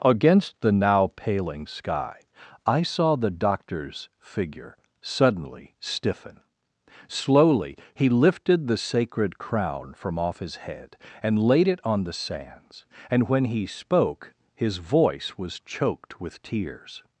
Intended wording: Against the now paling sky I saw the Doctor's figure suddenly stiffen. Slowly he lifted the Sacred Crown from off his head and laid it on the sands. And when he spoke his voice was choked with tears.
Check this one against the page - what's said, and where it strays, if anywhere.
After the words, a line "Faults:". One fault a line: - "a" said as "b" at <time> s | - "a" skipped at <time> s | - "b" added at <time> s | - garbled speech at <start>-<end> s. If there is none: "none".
Against the now paling sky I saw the Doctor's figure suddenly stiffen. Slowly he lifted the Sacred Crown from off his head and laid it on the sands. And when he spoke his voice was choked with tears.
Faults:
none